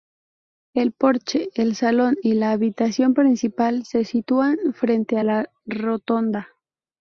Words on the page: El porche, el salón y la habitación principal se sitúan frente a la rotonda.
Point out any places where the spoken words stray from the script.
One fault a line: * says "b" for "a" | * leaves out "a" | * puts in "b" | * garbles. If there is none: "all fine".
all fine